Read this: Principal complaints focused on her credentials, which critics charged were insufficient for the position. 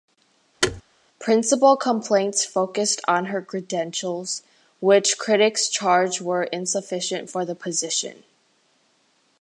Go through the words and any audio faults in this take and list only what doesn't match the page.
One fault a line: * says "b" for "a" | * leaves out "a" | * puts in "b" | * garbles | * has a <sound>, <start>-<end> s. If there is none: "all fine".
* has a thud, 0.6-0.8 s